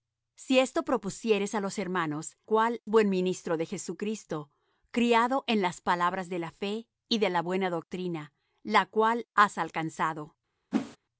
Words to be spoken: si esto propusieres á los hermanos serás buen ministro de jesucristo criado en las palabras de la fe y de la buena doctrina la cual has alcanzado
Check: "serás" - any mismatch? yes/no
yes